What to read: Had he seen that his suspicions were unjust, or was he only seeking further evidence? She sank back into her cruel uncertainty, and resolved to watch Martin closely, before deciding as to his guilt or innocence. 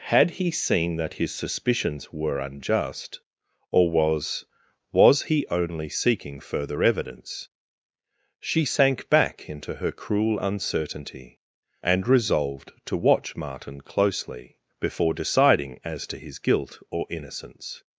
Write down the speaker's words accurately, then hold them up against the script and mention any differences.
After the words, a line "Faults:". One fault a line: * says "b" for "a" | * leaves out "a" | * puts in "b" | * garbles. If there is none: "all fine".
Had he seen that his suspicions were unjust, or was was he only seeking further evidence? She sank back into her cruel uncertainty, and resolved to watch Martin closely, before deciding as to his guilt or innocence.
Faults:
* puts in "was"